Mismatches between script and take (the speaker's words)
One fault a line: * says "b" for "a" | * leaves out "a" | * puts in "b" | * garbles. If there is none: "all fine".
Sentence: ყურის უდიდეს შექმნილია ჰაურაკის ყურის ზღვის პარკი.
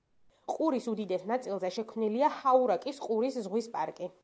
* puts in "ნაწილზე"